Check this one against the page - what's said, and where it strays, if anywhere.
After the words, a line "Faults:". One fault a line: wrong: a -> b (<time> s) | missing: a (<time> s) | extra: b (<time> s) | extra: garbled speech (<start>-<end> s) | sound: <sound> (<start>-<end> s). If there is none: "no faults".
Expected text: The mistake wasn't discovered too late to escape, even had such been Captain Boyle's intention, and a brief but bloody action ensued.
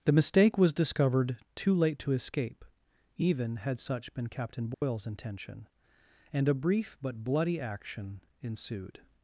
The mistake was discovered too late to escape, even had such been Captain Boyle's intention, and a brief but bloody action ensued.
Faults:
wrong: wasn't -> was (0.6 s)
sound: dropout (4.7-4.8 s)